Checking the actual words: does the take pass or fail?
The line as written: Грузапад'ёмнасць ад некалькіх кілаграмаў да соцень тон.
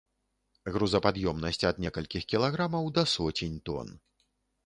pass